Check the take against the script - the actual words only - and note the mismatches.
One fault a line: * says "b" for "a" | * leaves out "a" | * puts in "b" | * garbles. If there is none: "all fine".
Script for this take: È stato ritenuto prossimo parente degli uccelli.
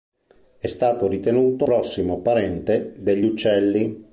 all fine